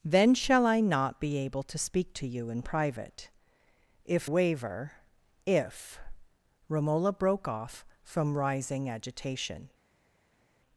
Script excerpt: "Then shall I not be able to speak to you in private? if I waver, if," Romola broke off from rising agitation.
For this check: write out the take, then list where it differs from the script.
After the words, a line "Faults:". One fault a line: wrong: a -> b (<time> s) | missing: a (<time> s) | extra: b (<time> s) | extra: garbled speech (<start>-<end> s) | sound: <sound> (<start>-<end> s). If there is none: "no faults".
"Then shall I not be able to speak to you in private? if waver, if," Romola broke off from rising agitation.
Faults:
missing: I (4.3 s)